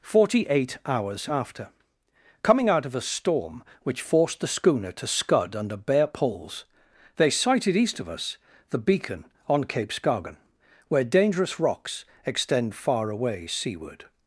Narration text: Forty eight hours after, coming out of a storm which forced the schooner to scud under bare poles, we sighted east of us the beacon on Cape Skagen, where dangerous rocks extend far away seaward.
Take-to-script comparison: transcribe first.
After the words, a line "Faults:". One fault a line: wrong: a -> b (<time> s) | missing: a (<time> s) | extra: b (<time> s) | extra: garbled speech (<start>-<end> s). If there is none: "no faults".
Forty eight hours after, coming out of a storm which forced the schooner to scud under bare poles, they sighted east of us the beacon on Cape Skagen, where dangerous rocks extend far away seaward.
Faults:
wrong: we -> they (7.2 s)